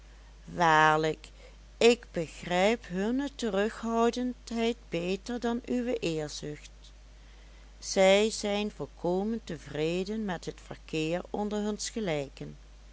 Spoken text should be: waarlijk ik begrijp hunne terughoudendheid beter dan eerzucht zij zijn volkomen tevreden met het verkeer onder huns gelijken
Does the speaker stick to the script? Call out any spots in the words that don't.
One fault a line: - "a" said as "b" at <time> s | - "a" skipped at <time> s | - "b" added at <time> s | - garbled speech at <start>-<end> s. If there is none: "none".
- "uwe" added at 5.7 s